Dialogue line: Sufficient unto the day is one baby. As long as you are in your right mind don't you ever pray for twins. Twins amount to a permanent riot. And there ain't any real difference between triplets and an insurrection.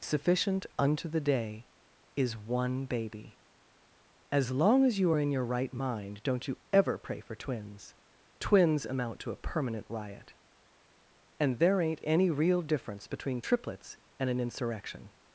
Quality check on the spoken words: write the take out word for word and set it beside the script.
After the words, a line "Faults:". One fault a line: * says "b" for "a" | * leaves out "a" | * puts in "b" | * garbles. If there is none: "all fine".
Sufficient unto the day is one baby. As long as you are in your right mind don't you ever pray for twins. Twins amount to a permanent riot. And there ain't any real difference between triplets and an insurrection.
Faults:
all fine